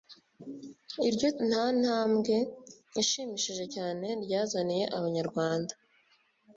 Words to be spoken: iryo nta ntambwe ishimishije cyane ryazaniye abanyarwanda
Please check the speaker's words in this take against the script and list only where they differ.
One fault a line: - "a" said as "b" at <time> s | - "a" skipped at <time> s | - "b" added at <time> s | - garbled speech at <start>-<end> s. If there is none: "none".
none